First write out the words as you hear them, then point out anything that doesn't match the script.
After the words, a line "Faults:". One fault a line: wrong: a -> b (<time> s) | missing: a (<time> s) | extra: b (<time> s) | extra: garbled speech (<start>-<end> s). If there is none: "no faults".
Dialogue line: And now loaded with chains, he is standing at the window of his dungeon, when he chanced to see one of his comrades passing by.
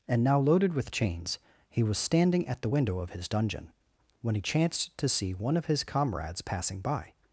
And now loaded with chains, he was standing at the window of his dungeon, when he chanced to see one of his comrades passing by.
Faults:
wrong: is -> was (1.8 s)